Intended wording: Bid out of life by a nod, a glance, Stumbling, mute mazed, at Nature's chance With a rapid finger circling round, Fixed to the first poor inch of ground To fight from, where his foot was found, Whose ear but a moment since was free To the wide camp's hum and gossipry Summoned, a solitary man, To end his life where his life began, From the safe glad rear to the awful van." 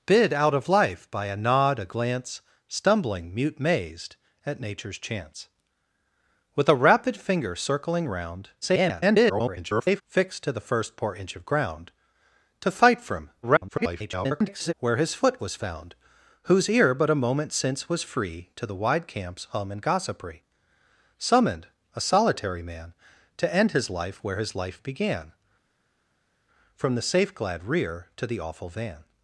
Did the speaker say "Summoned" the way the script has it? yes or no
yes